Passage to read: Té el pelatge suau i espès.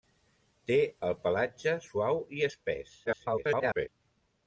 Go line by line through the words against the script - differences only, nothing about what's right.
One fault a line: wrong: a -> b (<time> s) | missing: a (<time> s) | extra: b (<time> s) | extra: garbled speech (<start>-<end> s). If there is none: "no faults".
extra: garbled speech (3.0-3.9 s)